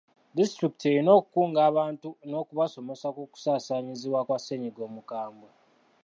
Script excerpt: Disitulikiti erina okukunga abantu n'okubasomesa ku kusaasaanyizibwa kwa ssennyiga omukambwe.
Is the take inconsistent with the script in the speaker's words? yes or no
no